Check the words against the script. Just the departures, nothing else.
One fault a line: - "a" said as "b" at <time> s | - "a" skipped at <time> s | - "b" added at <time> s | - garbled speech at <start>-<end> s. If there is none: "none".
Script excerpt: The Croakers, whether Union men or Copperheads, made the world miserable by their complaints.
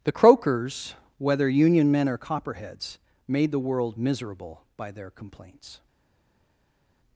none